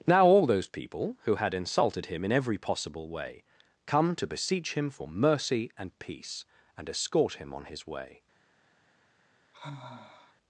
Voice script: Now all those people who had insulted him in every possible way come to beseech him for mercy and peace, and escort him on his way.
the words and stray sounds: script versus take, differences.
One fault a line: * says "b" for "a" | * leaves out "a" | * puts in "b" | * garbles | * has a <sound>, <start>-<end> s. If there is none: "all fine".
* has a sigh, 9.5-10.3 s